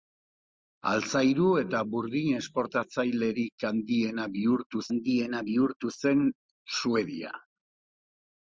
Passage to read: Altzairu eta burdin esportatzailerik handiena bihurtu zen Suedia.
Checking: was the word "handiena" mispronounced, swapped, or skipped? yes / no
no